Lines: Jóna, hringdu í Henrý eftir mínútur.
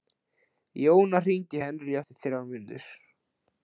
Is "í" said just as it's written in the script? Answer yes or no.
yes